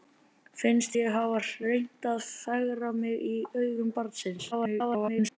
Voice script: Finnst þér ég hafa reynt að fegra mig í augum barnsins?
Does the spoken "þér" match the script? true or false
false